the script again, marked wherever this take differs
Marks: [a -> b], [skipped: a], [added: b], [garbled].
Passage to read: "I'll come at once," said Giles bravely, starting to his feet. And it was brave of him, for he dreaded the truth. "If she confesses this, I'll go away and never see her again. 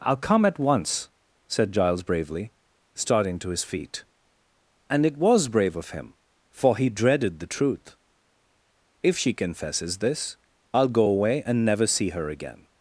"I'll come at once," said Giles bravely, starting to his feet. And it was brave of him, for he dreaded the truth. "If she confesses this, I'll go away and never see her again.